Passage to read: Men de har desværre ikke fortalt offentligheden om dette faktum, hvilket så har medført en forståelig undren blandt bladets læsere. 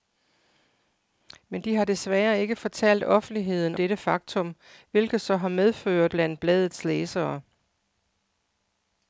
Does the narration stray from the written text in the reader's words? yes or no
yes